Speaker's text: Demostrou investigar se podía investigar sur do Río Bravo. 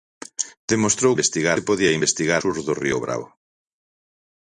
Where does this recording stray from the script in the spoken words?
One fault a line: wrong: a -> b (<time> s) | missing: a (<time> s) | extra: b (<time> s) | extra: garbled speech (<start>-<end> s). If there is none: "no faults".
no faults